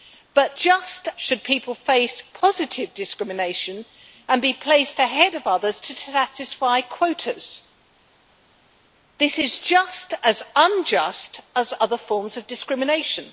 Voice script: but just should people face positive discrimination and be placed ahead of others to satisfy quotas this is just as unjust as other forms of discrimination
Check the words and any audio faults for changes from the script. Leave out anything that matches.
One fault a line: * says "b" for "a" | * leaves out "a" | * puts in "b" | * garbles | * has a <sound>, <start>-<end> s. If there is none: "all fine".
all fine